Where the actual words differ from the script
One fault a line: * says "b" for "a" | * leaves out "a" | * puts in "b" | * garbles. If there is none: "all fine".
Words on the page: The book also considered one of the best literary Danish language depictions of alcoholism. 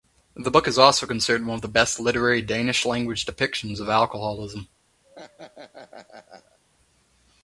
* puts in "is"